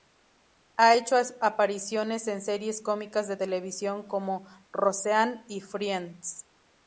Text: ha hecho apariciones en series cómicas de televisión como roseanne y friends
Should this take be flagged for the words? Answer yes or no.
no